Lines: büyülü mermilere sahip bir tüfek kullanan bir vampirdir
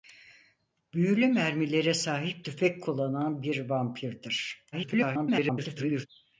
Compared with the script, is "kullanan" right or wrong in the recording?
right